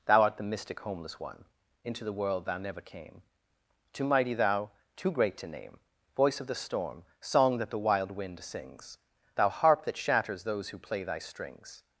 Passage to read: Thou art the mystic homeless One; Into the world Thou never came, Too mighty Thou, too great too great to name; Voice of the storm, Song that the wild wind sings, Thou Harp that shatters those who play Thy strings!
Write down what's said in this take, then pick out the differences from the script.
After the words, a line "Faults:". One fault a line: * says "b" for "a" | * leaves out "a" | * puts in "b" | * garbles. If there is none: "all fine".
Thou art the mystic homeless One; Into the world Thou never came, Too mighty Thou, too great to name; Voice of the storm, Song that the wild wind sings, Thou Harp that shatters those who play Thy strings!
Faults:
* leaves out "too great"